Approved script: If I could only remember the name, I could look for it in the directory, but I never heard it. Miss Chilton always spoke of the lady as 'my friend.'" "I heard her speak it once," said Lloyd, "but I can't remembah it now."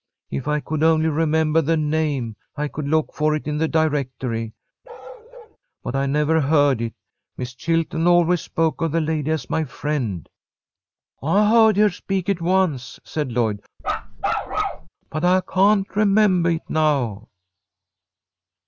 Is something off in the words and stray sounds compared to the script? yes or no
yes